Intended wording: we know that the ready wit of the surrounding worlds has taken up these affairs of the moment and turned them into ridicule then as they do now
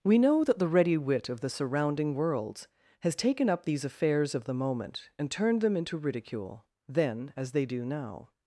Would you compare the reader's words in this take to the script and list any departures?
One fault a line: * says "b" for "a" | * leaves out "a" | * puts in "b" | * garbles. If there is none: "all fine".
all fine